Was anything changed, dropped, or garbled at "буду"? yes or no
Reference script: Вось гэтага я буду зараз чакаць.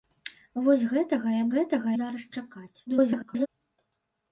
yes